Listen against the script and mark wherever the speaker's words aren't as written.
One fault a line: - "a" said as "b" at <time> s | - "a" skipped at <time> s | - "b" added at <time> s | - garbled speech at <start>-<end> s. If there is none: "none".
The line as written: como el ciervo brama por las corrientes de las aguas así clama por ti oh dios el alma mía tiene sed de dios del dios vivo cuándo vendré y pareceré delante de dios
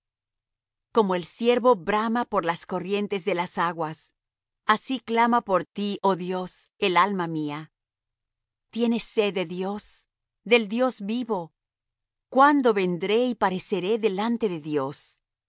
none